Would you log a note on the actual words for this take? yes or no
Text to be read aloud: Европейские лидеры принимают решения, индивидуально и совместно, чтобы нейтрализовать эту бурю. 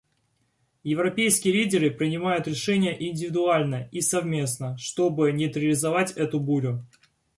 no